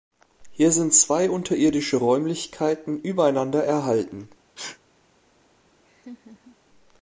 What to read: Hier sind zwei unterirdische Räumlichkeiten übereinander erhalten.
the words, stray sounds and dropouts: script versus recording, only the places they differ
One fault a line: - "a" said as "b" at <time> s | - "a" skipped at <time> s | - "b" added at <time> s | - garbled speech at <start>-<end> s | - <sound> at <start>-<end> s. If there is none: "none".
- sneeze at 4.6-4.8 s
- laugh at 5.8-6.6 s